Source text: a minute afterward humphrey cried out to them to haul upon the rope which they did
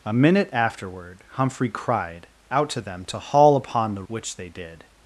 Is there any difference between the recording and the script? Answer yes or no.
yes